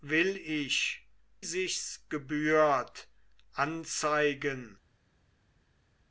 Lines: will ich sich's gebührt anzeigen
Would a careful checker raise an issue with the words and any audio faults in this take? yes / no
no